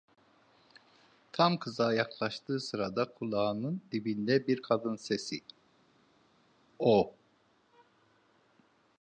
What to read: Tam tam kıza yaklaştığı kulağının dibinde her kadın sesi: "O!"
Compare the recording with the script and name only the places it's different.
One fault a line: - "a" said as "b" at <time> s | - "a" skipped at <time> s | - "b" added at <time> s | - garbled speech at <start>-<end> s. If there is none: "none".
- "tam" skipped at 1.6 s
- "sırada" added at 2.6 s
- "her" said as "bir" at 4.5 s